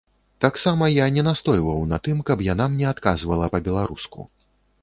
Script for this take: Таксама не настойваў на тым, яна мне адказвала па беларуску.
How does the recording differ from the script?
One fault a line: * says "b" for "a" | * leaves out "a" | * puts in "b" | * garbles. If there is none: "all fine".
* puts in "я"
* puts in "каб"